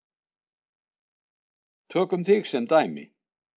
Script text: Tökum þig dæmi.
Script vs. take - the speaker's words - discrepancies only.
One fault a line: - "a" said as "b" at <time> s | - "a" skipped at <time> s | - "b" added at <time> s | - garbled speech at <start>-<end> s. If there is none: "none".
- "sem" added at 2.5 s